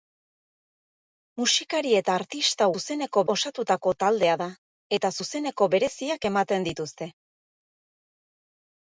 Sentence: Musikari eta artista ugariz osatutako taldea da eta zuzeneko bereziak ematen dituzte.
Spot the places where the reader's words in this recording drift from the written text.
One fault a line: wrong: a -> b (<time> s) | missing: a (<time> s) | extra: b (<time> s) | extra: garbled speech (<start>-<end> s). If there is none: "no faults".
wrong: ugariz -> zuzeneko (2.7 s)